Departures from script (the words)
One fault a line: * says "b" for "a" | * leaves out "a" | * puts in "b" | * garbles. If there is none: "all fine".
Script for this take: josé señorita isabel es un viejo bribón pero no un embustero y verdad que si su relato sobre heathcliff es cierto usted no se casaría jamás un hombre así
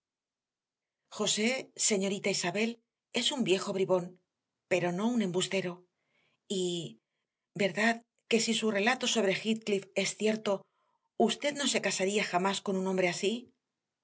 * puts in "con"